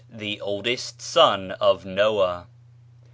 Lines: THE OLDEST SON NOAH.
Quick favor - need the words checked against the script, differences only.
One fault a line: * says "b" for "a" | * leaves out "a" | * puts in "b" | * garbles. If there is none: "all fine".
* puts in "OF"